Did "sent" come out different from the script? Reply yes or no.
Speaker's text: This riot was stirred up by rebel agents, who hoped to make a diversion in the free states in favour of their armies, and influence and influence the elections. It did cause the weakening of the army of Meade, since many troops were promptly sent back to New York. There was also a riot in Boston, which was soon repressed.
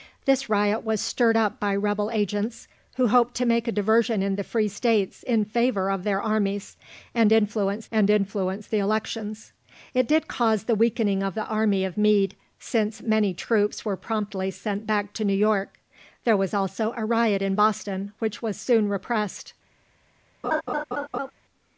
no